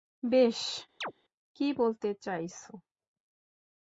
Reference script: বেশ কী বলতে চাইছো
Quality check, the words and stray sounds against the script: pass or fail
fail